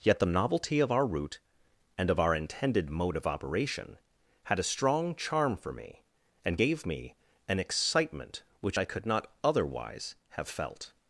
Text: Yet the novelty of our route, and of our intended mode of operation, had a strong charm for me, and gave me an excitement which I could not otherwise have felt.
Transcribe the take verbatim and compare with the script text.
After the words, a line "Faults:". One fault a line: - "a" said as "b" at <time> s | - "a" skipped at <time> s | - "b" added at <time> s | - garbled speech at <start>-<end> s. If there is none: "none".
Yet the novelty of our route, and of our intended mode of operation, had a strong charm for me, and gave me an excitement which I could not otherwise have felt.
Faults:
none